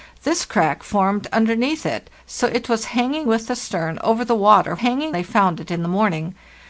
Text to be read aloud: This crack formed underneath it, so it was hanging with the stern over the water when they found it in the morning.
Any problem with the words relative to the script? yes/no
yes